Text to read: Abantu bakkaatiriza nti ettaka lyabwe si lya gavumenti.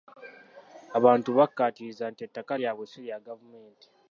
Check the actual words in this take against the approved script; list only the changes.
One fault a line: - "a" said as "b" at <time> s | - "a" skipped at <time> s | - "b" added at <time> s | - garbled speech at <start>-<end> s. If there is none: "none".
none